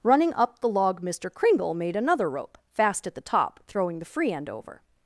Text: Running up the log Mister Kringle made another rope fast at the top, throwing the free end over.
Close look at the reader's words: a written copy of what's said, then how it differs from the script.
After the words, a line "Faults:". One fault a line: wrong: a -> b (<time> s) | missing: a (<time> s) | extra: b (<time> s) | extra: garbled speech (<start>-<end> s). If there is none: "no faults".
Running up the log Mister Kringle made another rope fast at the top, throwing the free end over.
Faults:
no faults